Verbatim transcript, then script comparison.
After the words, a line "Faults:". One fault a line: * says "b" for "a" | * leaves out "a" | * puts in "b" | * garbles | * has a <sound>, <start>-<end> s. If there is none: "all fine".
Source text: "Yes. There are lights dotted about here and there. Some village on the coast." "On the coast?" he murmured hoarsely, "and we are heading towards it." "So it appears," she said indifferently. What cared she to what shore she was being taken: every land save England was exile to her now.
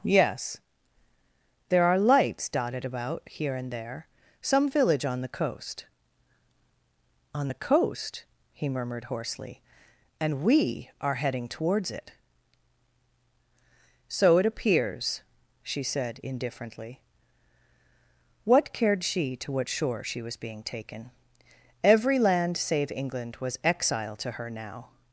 "Yes. There are lights dotted about here and there. Some village on the coast." "On the coast?" he murmured hoarsely, "and we are heading towards it." "So it appears," she said indifferently. What cared she to what shore she was being taken: every land save England was exile to her now.
Faults:
all fine